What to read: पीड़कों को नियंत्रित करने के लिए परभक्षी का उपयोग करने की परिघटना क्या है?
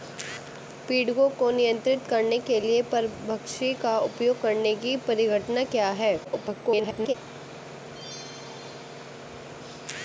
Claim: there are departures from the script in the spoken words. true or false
true